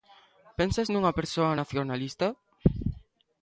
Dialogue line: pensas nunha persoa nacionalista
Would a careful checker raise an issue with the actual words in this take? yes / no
no